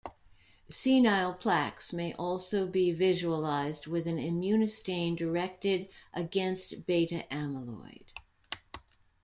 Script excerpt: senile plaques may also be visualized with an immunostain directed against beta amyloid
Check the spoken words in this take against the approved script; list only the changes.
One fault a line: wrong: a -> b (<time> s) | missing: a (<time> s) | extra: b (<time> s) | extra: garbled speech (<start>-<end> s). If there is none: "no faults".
no faults